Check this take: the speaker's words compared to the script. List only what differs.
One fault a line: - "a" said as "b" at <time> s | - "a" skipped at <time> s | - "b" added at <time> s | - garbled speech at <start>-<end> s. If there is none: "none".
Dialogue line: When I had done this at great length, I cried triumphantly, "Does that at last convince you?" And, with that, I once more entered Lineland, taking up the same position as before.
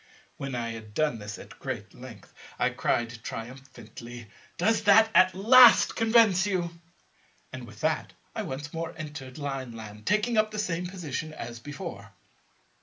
none